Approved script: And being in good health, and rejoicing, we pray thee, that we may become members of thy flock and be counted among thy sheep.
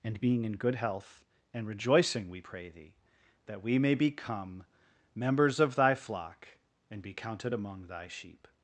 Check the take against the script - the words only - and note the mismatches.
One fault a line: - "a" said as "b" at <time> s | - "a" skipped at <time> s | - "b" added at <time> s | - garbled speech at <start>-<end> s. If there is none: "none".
none